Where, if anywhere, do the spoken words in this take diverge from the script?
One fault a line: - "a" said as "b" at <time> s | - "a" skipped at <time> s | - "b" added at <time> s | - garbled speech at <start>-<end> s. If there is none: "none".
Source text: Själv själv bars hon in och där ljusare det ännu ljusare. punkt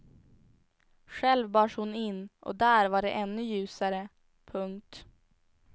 - "själv" skipped at 1.5 s
- "ljusare" said as "var" at 2.9 s